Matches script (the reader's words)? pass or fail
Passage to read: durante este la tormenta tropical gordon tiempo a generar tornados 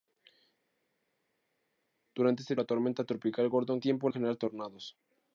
pass